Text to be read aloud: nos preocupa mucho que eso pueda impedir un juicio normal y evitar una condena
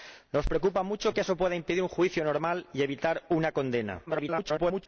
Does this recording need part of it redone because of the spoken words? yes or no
yes